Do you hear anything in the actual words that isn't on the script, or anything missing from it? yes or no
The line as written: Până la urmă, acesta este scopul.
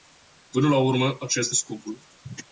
yes